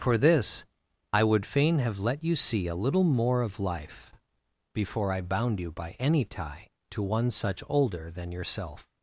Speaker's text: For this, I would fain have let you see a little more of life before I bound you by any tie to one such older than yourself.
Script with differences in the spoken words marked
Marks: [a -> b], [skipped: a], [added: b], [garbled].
For this, I would fain have let you see a little more of life before I bound you by any tie to one such older than yourself.